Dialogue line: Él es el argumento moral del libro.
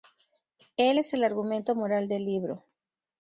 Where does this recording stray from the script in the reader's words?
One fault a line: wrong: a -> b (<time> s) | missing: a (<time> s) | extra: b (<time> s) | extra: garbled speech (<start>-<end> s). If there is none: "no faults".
no faults